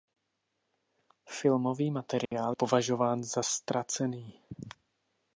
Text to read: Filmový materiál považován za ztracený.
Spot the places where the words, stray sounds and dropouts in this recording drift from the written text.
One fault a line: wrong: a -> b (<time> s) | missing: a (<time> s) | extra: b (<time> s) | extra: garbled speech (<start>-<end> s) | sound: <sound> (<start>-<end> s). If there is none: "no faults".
sound: dropout (2.3-2.3 s)